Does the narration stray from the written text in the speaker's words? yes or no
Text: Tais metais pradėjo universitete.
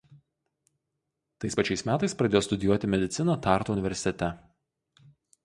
yes